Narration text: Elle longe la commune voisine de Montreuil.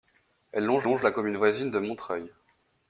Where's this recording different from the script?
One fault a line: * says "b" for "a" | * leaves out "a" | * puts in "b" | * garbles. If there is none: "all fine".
* puts in "longe"